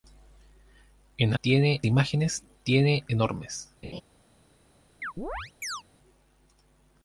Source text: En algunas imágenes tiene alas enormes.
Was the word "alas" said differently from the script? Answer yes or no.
yes